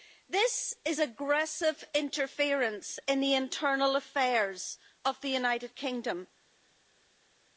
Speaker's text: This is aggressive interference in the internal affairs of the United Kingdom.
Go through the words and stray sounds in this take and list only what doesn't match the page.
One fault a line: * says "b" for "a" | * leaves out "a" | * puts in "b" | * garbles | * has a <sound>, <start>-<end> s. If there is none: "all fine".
all fine